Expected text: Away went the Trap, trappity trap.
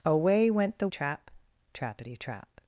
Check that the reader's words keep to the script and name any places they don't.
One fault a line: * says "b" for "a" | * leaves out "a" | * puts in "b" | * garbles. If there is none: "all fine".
all fine